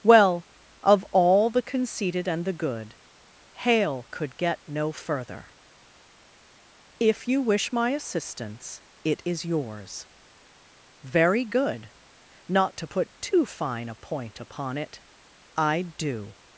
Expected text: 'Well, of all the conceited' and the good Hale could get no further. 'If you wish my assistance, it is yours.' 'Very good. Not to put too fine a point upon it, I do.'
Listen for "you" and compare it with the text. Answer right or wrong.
right